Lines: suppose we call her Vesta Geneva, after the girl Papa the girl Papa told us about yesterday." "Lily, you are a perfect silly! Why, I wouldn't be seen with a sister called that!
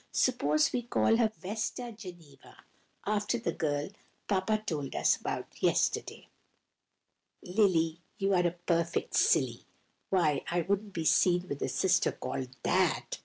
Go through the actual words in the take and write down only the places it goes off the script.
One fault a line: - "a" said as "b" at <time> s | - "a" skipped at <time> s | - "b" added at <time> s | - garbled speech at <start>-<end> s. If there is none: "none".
- "the girl Papa" skipped at 4.6 s